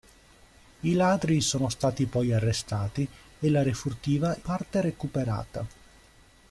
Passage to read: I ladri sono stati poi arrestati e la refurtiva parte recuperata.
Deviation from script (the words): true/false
false